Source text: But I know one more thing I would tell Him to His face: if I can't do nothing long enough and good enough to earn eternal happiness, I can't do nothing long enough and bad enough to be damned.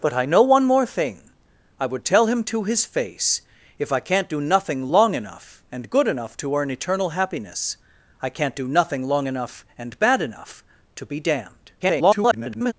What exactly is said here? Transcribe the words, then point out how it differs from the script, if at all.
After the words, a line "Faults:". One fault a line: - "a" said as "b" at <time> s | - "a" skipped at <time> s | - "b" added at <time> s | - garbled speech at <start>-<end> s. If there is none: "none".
But I know one more thing I would tell Him to His face: if I can't do nothing long enough and good enough to earn eternal happiness, I can't do nothing long enough and bad enough to be damned. [garbled]
Faults:
- garbled speech at 11.8-12.7 s